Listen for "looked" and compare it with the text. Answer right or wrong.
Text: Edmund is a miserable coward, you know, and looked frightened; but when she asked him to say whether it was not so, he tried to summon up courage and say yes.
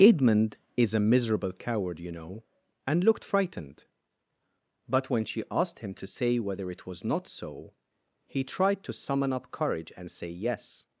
right